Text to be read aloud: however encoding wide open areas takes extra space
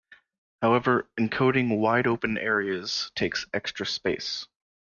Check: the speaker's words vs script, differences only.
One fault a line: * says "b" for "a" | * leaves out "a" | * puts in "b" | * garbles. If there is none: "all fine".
all fine